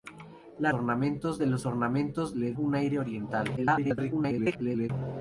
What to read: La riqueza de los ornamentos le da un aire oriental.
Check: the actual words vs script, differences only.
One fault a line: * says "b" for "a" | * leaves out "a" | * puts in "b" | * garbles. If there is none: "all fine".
* says "ornamentos" for "riqueza"
* leaves out "da"
* garbles